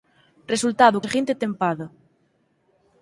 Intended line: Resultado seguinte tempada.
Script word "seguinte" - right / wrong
right